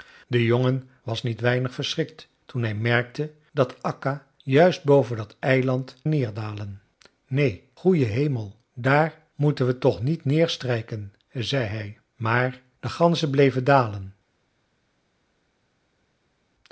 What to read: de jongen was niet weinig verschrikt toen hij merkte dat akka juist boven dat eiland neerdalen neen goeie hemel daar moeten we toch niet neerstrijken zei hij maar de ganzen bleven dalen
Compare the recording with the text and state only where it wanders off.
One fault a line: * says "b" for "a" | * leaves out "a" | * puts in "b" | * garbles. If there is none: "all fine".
all fine